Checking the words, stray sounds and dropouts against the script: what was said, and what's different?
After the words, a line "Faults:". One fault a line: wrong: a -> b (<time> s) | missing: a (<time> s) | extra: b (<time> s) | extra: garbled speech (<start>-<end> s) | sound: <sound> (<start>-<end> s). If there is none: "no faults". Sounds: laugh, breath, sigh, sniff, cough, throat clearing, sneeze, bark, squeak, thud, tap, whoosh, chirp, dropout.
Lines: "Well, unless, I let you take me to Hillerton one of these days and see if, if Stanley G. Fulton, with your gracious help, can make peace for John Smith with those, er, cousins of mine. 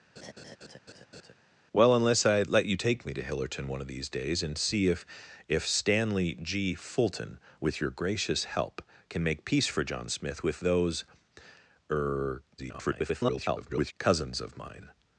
"Well, unless, I let you take me to Hillerton one of these days and see if, if Stanley G. Fulton, with your gracious help, can make peace for John Smith with those, er, [garbled] cousins of mine.
Faults:
sound: laugh (0.2-1.3 s)
extra: garbled speech (12.6-13.9 s)